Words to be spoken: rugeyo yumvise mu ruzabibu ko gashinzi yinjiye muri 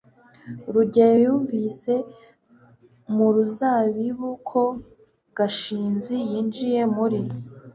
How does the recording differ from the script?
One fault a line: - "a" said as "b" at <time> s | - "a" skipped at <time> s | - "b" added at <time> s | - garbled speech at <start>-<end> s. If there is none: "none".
none